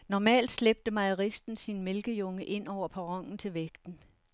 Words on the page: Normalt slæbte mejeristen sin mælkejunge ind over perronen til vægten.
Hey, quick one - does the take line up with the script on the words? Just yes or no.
yes